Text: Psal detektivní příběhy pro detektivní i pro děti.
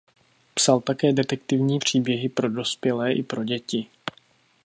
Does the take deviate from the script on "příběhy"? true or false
false